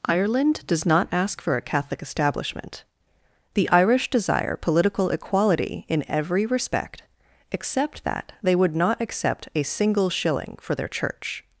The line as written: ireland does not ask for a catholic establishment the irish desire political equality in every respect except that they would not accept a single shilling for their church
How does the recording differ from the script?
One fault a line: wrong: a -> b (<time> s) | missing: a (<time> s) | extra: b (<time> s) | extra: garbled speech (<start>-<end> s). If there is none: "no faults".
no faults